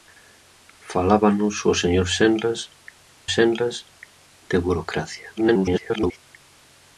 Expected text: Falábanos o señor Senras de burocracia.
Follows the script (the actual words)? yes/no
no